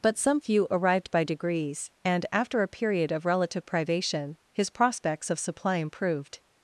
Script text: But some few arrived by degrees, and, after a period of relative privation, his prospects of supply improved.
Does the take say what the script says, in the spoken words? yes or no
yes